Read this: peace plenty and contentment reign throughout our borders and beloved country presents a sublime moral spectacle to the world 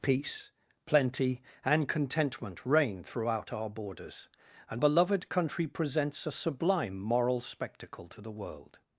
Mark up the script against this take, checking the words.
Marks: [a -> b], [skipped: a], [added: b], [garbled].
peace plenty and contentment reign throughout our borders and beloved country presents a sublime moral spectacle to the world